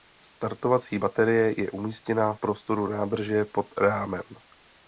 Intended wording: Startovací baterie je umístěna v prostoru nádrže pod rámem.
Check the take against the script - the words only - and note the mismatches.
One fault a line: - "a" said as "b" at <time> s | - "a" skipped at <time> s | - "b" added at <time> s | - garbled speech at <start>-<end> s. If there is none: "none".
- "v" skipped at 2.3 s